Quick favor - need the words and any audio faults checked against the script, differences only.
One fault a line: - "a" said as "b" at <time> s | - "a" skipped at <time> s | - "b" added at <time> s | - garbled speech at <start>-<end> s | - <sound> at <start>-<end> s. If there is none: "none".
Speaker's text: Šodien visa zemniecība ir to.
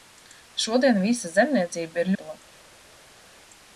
none